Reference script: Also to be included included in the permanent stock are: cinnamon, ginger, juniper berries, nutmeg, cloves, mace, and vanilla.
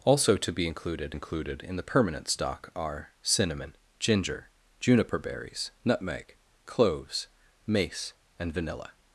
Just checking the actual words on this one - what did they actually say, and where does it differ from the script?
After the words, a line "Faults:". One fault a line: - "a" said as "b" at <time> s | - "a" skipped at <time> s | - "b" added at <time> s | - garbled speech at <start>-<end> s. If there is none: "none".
Also to be included included in the permanent stock are: cinnamon, ginger, juniper berries, nutmeg, cloves, mace, and vanilla.
Faults:
none